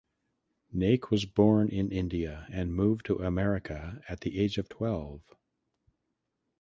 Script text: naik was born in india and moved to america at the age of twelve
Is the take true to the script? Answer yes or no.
yes